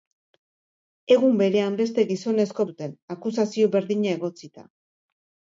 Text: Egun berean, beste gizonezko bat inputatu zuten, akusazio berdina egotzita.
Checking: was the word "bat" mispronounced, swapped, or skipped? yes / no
yes